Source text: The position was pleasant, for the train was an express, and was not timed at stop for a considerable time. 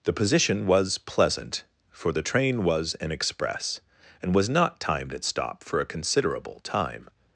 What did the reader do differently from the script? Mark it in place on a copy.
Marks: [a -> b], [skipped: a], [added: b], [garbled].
The position was pleasant, for the train was an express, and was not timed at stop for a considerable time.